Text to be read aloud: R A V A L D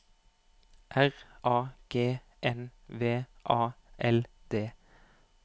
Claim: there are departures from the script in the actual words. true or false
true